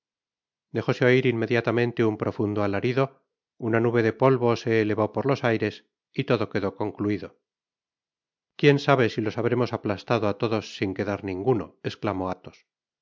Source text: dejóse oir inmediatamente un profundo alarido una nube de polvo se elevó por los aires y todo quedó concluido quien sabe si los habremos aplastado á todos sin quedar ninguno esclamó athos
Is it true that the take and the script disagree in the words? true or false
false